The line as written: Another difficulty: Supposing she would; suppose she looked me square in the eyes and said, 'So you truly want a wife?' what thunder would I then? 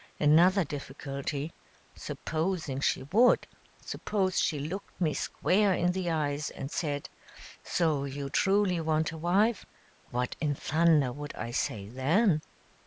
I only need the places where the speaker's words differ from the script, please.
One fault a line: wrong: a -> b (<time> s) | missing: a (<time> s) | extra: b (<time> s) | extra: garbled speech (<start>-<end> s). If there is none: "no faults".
extra: in (10.4 s)
extra: say (11.5 s)